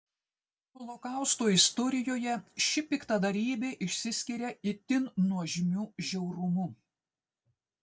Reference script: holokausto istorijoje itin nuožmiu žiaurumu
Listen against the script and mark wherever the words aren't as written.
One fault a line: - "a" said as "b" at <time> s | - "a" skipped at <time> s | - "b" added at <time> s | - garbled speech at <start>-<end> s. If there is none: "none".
- "ši piktadarybė išsiskiria" added at 2.7 s